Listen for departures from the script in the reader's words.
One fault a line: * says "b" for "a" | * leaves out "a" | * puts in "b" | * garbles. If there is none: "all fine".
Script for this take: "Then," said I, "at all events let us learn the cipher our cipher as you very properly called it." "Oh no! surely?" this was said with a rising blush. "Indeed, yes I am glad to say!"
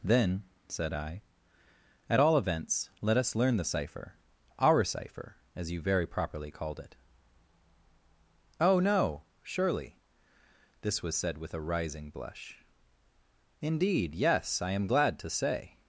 all fine